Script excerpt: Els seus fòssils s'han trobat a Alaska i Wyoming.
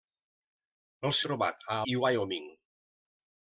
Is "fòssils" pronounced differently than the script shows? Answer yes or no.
yes